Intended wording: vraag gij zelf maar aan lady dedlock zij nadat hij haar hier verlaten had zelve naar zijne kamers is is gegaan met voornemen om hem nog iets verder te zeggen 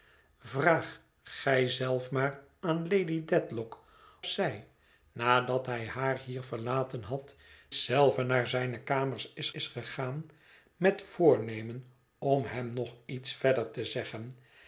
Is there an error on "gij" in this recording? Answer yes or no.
no